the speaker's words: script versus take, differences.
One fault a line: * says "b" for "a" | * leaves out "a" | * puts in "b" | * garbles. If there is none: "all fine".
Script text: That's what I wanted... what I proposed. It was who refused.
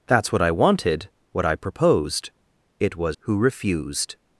all fine